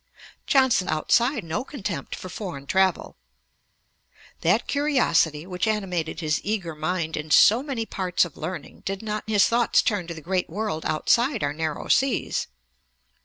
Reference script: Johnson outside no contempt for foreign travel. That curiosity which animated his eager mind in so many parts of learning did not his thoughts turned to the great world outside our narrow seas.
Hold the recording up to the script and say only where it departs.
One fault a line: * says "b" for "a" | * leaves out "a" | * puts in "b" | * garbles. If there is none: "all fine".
all fine